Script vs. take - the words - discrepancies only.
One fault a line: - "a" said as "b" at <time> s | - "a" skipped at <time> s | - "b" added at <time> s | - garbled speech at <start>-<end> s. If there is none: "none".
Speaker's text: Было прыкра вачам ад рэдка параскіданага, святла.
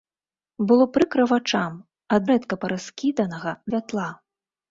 none